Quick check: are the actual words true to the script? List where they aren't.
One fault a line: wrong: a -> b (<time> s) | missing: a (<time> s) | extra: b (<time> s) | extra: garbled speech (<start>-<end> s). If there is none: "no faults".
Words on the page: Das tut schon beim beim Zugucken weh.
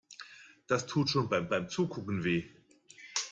no faults